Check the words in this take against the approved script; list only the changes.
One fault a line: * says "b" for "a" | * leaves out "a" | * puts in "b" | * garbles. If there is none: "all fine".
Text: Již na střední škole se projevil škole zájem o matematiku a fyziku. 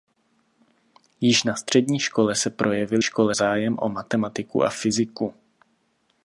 all fine